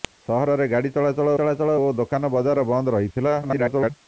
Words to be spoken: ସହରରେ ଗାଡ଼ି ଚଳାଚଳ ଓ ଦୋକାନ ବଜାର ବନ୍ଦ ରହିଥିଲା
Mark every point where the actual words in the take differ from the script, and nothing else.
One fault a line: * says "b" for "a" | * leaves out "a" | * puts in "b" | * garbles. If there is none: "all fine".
* puts in "ଚଳାଚଳ"
* garbles